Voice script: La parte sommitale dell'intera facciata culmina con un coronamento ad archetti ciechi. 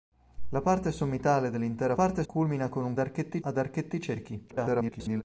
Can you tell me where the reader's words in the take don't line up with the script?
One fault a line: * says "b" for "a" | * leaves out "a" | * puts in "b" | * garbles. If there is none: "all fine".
* says "parte" for "facciata"
* says "archetti" for "coronamento"
* garbles